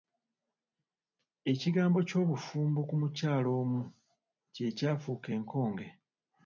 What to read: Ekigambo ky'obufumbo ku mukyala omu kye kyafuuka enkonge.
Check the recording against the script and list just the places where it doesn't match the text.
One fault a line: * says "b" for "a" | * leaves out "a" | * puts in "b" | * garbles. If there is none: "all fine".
all fine